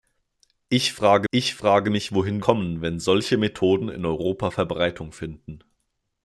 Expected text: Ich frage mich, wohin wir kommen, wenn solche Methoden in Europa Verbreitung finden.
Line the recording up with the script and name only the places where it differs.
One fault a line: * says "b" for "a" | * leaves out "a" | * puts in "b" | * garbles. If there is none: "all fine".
* puts in "ich frage"
* leaves out "wir"